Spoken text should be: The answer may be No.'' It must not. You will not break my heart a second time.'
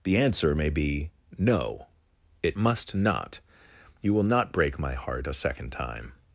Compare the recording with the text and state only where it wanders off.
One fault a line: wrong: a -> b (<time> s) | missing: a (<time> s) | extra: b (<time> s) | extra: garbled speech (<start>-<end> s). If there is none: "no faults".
no faults